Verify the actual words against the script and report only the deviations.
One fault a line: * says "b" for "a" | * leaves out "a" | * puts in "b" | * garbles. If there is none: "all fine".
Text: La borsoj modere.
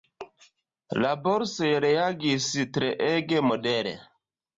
* puts in "reagis treege"